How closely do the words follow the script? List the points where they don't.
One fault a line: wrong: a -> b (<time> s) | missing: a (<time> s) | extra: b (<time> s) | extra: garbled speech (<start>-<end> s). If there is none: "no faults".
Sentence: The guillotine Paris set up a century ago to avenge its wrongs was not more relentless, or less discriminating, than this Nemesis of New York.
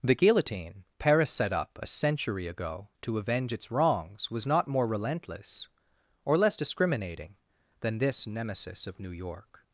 no faults